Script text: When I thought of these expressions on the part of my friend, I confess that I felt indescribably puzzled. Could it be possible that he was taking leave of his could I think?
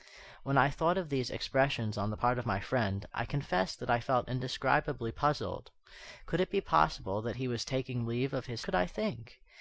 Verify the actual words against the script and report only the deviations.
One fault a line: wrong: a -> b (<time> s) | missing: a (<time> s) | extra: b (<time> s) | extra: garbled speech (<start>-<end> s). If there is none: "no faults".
no faults